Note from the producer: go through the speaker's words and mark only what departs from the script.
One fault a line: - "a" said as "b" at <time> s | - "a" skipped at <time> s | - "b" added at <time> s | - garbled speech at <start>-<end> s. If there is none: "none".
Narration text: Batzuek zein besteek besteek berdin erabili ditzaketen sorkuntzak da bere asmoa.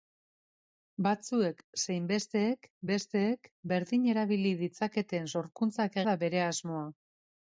none